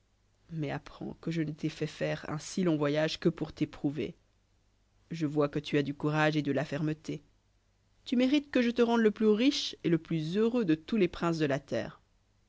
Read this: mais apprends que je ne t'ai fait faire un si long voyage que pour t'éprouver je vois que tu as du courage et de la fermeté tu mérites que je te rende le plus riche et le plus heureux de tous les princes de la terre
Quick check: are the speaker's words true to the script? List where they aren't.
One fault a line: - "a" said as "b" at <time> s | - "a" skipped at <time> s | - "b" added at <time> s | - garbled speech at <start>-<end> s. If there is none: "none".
none